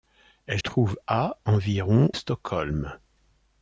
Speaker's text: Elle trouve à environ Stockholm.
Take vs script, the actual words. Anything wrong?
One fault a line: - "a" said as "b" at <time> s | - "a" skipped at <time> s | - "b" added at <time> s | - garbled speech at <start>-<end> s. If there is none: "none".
none